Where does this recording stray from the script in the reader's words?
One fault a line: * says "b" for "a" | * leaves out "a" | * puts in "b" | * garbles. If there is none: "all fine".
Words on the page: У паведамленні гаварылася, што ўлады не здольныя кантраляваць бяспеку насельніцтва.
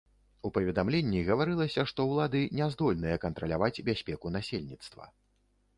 all fine